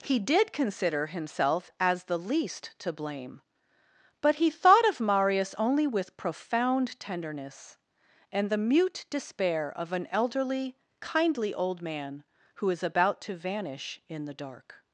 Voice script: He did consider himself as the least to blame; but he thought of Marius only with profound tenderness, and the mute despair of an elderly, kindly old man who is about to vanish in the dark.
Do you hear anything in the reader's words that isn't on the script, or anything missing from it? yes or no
no